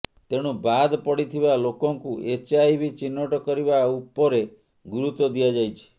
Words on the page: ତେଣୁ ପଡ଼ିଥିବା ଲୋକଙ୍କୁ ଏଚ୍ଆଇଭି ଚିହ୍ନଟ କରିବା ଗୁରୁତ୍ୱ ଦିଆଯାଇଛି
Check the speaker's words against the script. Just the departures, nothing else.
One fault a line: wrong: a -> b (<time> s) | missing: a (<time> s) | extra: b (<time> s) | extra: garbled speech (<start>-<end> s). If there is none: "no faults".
extra: ବାଦ୍ (0.6 s)
extra: ଉପରେ (3.9 s)